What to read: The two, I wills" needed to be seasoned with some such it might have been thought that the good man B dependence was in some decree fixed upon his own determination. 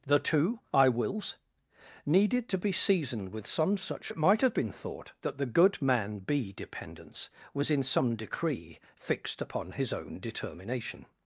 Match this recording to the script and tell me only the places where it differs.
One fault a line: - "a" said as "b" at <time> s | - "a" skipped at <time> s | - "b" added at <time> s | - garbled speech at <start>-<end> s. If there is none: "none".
none